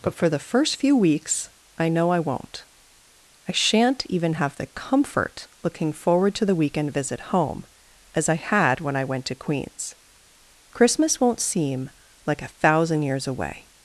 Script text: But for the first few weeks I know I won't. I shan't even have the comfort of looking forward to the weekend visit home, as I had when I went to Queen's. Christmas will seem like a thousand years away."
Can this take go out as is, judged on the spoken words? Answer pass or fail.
fail